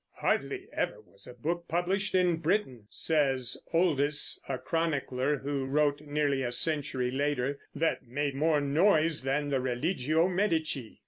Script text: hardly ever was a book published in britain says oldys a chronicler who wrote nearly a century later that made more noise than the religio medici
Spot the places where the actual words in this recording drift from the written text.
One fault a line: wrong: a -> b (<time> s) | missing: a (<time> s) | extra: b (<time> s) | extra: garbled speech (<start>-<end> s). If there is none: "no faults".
no faults